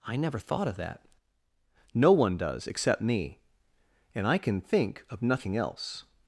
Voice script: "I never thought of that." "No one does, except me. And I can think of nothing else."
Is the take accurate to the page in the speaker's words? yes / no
yes